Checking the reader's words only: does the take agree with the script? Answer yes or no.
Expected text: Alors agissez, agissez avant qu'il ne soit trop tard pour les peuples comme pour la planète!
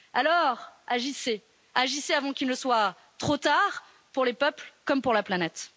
yes